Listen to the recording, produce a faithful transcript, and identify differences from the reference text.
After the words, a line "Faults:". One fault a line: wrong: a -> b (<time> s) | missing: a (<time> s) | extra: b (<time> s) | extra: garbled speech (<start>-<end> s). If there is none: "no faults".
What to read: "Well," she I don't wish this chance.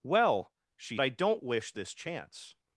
"Well," she I don't wish this chance.
Faults:
no faults